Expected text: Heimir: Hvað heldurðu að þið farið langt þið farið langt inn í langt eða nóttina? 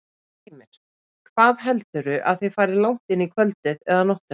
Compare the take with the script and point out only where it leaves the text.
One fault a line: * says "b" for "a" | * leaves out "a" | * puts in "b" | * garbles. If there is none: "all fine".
* leaves out "þið farið langt"
* says "kvöldið" for "langt"